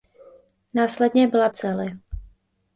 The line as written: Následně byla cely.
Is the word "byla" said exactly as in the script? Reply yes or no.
yes